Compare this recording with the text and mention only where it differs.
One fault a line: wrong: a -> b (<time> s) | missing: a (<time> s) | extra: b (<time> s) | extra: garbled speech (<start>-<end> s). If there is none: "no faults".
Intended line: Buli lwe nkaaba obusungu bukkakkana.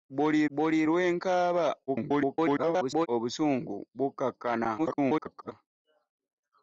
extra: buli (0.5 s)
extra: garbled speech (1.9-3.1 s)
extra: garbled speech (4.8-5.5 s)